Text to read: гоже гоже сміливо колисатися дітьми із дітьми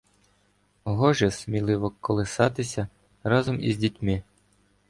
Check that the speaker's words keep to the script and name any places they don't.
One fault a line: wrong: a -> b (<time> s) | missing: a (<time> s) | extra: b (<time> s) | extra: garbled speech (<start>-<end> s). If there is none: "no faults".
missing: гоже (1.3 s)
wrong: дітьми -> разом (3.2 s)